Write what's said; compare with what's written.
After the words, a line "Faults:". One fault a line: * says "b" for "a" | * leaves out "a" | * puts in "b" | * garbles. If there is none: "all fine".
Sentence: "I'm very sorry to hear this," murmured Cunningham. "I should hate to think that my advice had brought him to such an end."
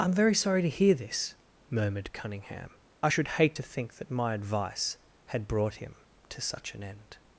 "I'm very sorry to hear this," murmured Cunningham. "I should hate to think that my advice had brought him to such an end."
Faults:
all fine